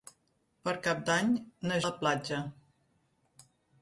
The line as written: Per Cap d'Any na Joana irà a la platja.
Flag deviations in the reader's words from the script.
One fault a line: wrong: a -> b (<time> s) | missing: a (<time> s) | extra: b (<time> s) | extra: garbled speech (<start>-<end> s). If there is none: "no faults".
missing: Joana irà a (1.8 s)